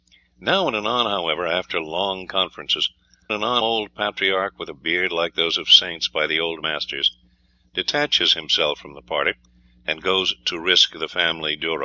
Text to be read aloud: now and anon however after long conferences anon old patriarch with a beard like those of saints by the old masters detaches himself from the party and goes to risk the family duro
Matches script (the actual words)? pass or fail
pass